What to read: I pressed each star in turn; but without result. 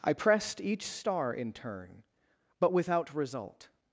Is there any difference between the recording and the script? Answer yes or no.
no